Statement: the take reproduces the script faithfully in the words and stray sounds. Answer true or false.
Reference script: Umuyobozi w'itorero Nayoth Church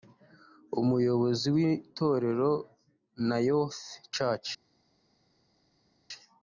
true